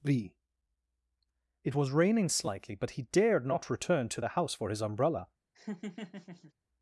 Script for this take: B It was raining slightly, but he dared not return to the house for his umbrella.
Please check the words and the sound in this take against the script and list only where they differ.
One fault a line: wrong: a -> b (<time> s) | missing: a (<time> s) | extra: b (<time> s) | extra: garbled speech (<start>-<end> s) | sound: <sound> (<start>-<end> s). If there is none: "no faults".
sound: laugh (5.5-6.5 s)